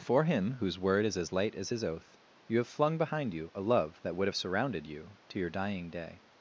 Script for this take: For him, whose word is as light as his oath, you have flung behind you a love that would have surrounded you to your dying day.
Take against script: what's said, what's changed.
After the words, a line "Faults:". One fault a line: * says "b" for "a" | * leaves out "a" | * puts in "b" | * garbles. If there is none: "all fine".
For him, whose word is as light as his oath, you have flung behind you a love that would have surrounded you to your dying day.
Faults:
all fine